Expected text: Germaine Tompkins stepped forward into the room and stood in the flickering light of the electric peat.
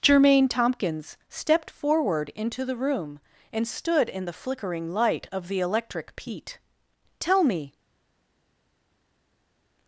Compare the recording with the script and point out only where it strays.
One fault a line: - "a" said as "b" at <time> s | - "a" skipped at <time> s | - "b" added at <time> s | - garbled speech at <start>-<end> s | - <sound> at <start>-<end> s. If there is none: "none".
- "Tell me" added at 7.2 s